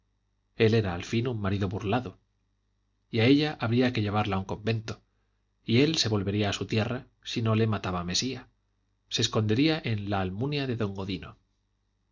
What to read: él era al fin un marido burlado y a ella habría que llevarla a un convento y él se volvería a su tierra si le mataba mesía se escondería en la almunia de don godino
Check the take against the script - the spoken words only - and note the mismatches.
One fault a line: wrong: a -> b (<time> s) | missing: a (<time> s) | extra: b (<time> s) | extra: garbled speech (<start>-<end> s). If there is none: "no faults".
extra: no (7.4 s)